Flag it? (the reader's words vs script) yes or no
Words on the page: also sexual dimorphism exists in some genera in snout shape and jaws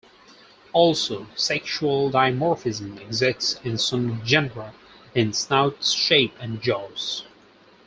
no